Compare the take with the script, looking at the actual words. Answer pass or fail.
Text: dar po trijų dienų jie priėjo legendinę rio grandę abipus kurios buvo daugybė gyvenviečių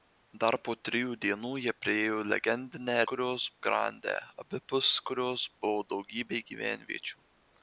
fail